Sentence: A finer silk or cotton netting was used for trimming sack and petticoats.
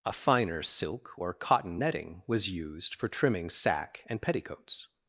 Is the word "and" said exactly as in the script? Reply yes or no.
yes